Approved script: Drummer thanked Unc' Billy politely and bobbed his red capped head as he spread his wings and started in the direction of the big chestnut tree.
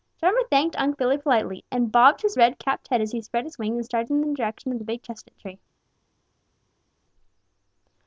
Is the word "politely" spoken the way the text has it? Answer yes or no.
yes